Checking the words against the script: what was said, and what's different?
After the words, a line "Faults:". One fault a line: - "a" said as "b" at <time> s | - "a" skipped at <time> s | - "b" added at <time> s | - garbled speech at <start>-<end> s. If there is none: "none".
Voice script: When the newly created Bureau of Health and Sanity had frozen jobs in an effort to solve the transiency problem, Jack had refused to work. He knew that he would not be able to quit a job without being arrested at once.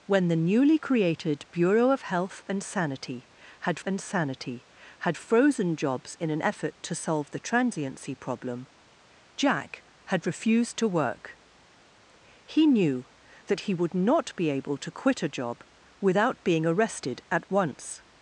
When the newly created Bureau of Health and Sanity had and Sanity had frozen jobs in an effort to solve the transiency problem, Jack had refused to work. He knew that he would not be able to quit a job without being arrested at once.
Faults:
- "and Sanity had" added at 3.8 s